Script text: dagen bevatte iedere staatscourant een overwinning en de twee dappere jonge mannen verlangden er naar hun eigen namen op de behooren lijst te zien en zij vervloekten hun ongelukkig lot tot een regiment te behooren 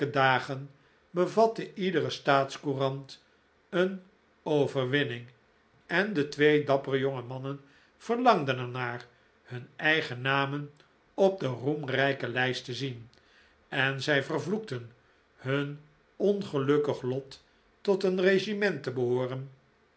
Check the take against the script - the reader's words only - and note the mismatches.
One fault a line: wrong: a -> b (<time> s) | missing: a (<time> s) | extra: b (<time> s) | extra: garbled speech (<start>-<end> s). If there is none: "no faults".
wrong: behooren -> roemrijke (11.5 s)